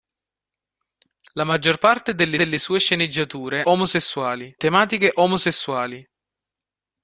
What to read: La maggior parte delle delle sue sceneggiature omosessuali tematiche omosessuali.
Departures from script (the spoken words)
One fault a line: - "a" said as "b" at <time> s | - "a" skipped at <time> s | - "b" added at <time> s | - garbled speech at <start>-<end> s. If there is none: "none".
none